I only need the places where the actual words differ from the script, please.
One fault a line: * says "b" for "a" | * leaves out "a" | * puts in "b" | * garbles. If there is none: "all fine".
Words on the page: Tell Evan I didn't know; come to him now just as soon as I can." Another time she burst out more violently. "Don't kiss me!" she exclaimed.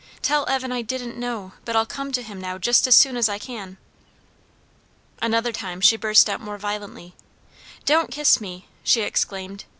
* puts in "but I'll"